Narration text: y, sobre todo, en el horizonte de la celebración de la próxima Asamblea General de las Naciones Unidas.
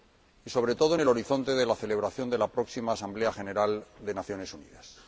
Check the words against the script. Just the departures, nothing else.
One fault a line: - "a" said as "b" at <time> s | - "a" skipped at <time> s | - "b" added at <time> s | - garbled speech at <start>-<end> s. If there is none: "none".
none